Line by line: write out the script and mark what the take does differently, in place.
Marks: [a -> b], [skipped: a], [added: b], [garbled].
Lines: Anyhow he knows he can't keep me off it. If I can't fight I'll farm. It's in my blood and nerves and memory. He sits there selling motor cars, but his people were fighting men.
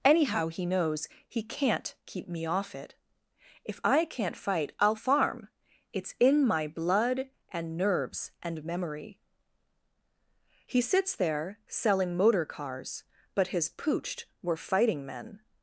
Anyhow he knows he can't keep me off it. If I can't fight I'll farm. It's in my blood and nerves and memory. He sits there selling motor cars, but his [people -> pooched] were fighting men.